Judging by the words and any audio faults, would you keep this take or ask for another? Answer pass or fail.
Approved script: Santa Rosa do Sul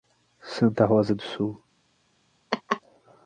fail